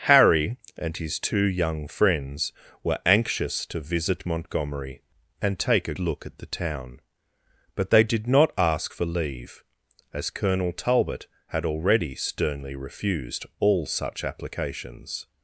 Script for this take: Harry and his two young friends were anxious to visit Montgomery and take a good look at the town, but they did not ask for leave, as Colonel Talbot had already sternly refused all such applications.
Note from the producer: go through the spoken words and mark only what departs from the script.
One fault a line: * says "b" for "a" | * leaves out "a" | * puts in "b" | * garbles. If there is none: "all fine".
* leaves out "good"